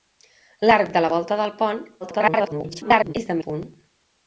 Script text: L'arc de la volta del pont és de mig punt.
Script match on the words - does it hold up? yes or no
no